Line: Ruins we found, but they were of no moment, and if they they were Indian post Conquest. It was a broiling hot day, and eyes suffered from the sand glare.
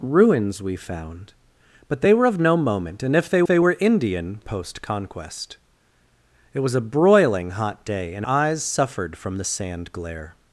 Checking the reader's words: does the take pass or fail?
pass